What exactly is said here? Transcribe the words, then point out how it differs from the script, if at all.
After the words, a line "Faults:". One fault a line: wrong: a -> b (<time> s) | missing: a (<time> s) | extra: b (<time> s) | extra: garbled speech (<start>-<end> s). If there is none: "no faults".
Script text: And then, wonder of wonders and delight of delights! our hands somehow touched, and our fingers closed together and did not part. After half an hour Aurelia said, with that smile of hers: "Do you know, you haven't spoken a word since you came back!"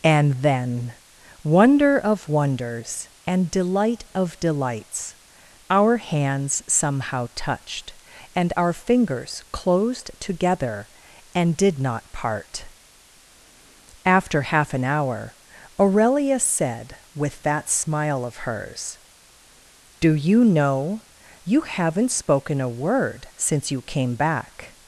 And then, wonder of wonders and delight of delights! our hands somehow touched, and our fingers closed together and did not part. After half an hour Aurelia said, with that smile of hers: "Do you know, you haven't spoken a word since you came back!"
Faults:
no faults